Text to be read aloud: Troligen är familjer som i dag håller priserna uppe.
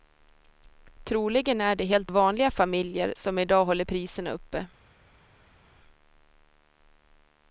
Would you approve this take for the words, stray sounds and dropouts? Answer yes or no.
no